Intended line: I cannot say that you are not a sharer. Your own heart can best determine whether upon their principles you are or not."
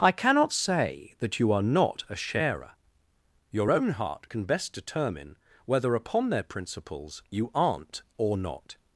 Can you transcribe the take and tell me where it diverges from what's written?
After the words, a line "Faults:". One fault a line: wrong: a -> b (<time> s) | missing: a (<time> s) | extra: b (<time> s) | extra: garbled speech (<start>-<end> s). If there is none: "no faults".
I cannot say that you are not a sharer. Your own heart can best determine whether upon their principles you aren't or not."
Faults:
wrong: are -> aren't (7.5 s)